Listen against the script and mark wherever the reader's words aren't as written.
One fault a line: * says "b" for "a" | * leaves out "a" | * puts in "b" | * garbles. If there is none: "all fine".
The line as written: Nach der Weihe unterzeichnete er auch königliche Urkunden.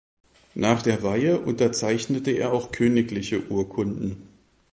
all fine